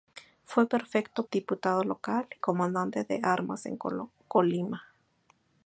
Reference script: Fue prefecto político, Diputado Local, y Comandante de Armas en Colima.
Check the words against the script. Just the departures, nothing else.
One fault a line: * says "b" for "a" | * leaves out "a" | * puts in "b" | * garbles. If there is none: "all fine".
* leaves out "político"
* leaves out "y"